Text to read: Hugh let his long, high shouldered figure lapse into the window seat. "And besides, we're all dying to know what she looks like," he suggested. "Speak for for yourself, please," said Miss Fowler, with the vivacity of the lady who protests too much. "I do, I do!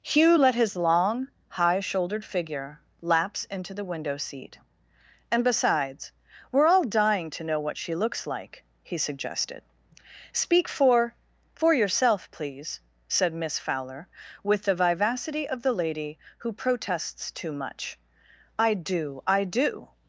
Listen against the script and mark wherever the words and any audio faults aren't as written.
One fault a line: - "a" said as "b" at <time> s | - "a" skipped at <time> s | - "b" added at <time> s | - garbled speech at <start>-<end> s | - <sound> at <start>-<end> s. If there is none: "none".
none